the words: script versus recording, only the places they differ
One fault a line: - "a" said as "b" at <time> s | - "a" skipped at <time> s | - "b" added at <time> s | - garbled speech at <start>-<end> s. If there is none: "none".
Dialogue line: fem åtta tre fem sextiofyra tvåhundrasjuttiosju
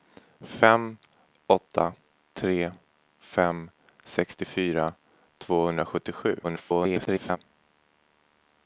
- garbled speech at 6.4-7.4 s